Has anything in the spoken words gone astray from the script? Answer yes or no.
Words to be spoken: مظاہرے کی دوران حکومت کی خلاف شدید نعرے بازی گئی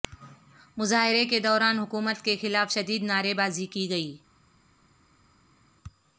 yes